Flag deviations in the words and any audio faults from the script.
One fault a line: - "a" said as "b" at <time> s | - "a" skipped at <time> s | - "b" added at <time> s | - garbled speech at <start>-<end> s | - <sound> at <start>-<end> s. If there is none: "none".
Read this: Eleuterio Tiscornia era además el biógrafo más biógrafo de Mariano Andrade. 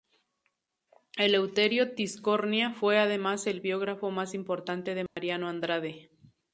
- "era" said as "fue" at 2.7 s
- "biógrafo" said as "importante" at 4.3 s
- dropout at 5.1-5.2 s